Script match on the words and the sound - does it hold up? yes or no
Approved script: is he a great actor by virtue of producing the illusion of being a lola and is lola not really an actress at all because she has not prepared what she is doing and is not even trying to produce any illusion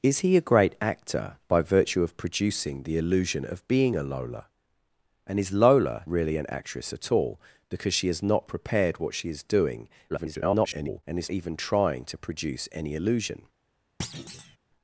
no